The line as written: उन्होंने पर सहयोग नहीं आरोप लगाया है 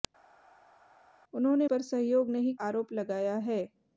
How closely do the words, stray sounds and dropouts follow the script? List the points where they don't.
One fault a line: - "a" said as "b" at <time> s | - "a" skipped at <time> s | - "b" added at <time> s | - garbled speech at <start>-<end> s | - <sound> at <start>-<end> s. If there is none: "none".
none